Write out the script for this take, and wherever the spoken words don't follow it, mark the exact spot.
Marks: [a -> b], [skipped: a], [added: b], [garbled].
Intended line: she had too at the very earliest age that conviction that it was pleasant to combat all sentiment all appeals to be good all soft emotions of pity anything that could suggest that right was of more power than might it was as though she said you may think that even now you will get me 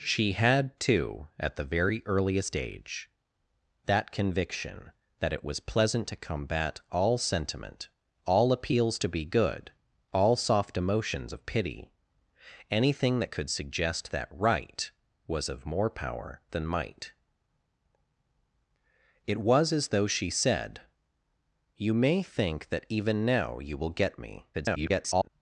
she had too at the very earliest age that conviction that it was pleasant to combat all sentiment all appeals to be good all soft emotions of pity anything that could suggest that right was of more power than might it was as though she said you may think that even now you will get me [garbled]